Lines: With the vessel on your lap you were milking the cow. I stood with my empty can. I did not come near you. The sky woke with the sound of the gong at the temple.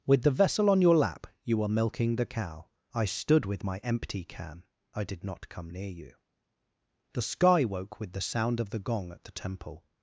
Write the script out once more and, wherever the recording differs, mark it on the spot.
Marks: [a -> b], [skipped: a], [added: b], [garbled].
With the vessel on your lap you were milking the cow. I stood with my empty can. I did not come near you. The sky woke with the sound of the gong at the temple.